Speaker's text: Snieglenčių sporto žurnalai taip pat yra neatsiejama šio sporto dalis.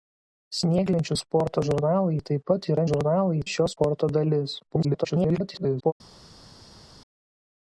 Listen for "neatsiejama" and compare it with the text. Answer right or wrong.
wrong